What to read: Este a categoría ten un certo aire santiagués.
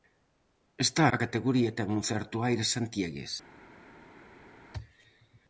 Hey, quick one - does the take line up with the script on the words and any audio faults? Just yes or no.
yes